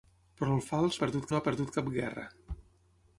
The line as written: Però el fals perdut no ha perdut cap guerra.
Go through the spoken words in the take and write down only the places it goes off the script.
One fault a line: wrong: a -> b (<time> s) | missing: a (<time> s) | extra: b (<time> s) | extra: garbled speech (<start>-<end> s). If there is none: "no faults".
no faults